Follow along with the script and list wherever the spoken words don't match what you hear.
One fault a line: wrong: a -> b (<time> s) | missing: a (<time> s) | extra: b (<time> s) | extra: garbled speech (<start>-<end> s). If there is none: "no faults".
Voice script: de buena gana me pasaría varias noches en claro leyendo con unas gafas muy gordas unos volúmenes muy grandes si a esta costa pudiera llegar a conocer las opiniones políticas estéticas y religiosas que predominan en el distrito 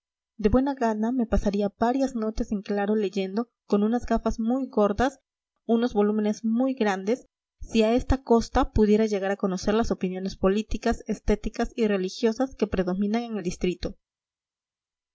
no faults